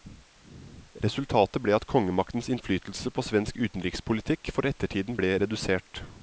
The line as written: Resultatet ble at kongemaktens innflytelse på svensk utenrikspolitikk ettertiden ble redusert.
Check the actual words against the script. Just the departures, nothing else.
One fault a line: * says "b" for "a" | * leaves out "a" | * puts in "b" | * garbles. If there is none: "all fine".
* puts in "for"